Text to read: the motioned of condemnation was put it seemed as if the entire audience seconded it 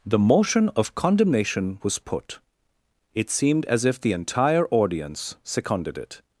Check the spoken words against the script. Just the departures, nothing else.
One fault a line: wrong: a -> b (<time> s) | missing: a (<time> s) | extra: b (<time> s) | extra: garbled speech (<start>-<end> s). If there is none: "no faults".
wrong: motioned -> motion (0.2 s)